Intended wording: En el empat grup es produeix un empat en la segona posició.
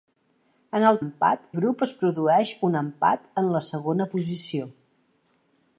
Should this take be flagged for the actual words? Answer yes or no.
no